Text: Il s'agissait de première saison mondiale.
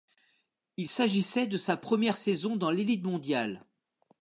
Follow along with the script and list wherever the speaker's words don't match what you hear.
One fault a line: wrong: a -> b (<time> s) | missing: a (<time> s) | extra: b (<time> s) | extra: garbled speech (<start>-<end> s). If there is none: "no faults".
extra: sa (1.6 s)
extra: dans l'élite (2.5 s)